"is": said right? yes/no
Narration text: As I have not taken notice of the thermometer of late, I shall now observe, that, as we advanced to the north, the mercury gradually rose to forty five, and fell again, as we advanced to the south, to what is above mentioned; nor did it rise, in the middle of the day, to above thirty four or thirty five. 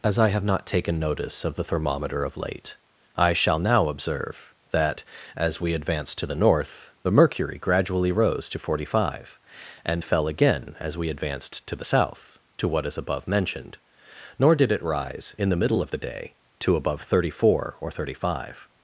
yes